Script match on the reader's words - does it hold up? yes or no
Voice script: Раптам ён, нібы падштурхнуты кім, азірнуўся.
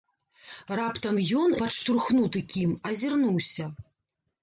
no